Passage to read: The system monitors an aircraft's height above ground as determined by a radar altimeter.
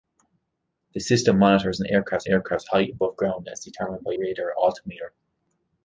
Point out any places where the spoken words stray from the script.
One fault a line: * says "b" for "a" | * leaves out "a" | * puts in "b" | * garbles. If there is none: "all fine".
* puts in "aircraft's"
* leaves out "a"